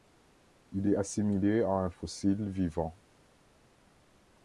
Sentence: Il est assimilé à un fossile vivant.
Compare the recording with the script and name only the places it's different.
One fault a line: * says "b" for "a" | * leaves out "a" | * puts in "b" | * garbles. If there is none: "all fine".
all fine